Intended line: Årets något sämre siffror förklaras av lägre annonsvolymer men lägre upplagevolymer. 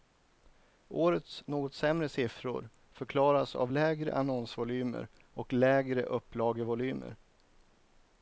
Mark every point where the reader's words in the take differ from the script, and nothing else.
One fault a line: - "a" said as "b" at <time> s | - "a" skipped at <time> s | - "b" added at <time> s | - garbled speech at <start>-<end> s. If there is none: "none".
- "men" said as "och" at 5.2 s